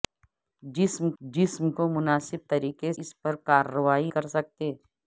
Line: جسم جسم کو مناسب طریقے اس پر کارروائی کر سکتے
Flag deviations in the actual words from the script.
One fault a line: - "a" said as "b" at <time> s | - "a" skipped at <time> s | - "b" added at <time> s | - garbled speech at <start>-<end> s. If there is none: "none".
none